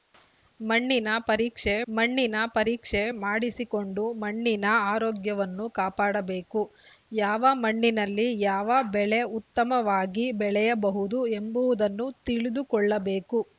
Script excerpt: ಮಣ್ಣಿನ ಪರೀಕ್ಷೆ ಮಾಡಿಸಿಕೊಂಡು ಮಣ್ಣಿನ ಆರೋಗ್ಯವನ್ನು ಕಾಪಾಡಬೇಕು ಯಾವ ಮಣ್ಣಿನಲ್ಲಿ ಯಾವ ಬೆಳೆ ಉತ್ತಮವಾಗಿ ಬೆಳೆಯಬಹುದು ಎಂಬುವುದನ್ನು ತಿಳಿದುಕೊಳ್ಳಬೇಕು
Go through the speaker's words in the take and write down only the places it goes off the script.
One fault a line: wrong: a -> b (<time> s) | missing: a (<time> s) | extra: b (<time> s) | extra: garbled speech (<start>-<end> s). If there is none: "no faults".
extra: ಮಣ್ಣಿನ ಪರೀಕ್ಷೆ (1.9 s)